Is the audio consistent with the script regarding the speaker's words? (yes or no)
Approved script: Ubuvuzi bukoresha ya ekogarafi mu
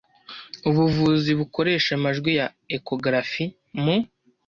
no